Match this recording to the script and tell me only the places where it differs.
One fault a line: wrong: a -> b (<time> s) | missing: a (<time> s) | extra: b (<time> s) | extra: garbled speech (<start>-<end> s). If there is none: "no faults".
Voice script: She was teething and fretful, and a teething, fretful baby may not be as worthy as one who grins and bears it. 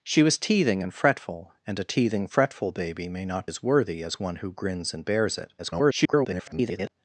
missing: be (3.5 s)
extra: garbled speech (5.6-6.9 s)